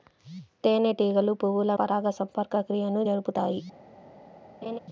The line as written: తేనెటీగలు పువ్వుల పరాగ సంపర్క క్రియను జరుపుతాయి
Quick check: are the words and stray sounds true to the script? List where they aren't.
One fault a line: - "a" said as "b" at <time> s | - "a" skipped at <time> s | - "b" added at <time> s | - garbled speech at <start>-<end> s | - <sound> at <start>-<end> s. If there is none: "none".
- laugh at 4.6-4.8 s